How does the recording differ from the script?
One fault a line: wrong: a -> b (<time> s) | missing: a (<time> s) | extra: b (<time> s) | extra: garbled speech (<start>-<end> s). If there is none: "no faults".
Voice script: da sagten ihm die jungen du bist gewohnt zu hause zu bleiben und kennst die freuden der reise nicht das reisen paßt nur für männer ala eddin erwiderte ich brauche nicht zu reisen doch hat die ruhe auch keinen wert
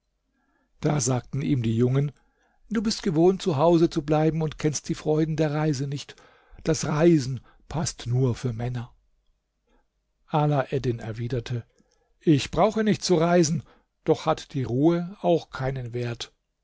no faults